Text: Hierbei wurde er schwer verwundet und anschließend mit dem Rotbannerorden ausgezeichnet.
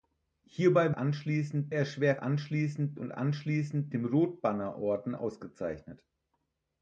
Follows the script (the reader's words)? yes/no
no